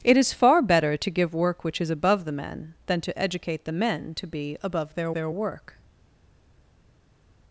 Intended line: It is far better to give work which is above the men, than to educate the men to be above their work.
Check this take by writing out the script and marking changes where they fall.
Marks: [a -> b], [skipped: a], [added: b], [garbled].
It is far better to give work which is above the men, than to educate the men to be above their [added: their] work.